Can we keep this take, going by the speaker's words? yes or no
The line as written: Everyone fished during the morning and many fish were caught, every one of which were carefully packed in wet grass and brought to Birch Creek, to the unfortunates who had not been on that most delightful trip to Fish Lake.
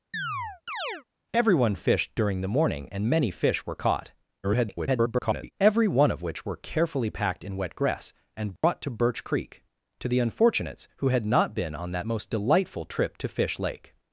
no